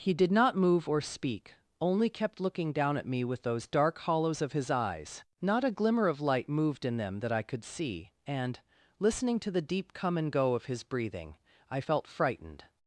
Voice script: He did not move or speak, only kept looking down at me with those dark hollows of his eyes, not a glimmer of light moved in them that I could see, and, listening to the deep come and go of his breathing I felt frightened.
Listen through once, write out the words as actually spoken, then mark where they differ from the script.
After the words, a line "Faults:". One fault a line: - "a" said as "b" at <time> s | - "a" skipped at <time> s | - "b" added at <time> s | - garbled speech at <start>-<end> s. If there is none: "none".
He did not move or speak, only kept looking down at me with those dark hollows of his eyes, not a glimmer of light moved in them that I could see, and, listening to the deep come and go of his breathing I felt frightened.
Faults:
none